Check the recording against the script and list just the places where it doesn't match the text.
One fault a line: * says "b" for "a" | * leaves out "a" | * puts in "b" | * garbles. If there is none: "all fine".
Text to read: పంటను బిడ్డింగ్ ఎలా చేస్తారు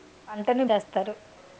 * leaves out "బిడ్డింగ్ ఎలా"